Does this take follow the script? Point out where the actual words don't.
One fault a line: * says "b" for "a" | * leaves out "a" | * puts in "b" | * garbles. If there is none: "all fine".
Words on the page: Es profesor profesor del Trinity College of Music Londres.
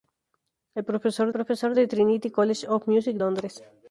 all fine